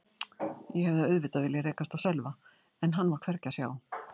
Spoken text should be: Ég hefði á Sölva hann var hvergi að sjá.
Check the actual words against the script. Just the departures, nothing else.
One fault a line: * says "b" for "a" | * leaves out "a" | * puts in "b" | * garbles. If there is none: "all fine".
* puts in "auðvitað viljað rekast"
* puts in "en"